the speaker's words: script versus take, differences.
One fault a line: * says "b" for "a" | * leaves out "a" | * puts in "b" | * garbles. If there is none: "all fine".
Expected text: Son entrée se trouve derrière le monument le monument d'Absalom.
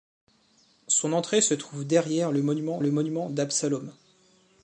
all fine